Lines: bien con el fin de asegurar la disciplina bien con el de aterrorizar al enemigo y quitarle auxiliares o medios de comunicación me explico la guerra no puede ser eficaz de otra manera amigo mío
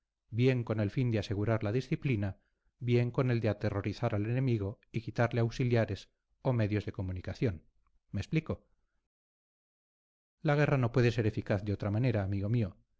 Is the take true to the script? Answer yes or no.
yes